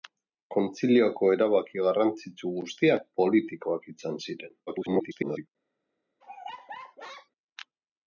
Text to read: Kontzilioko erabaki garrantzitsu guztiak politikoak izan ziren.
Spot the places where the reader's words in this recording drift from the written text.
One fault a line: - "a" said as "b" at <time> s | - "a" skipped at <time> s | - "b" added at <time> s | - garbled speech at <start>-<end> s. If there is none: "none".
- garbled speech at 4.7-5.5 s